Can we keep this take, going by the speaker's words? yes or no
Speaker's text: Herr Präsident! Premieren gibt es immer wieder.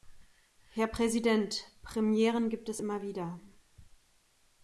yes